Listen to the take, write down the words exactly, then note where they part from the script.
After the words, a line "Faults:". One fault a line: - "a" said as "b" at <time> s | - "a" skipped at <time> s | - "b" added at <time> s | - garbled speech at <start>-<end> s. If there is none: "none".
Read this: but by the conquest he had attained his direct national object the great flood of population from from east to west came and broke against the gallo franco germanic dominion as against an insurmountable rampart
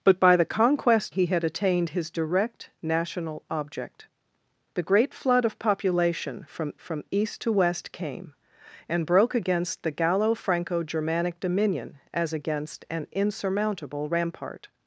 but by the conquest he had attained his direct national object the great flood of population from from east to west came and broke against the gallo franco germanic dominion as against an insurmountable rampart
Faults:
none